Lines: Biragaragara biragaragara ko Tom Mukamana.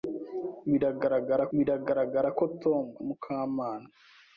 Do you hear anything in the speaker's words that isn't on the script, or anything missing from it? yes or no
no